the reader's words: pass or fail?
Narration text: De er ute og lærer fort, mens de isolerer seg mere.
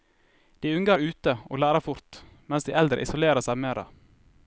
fail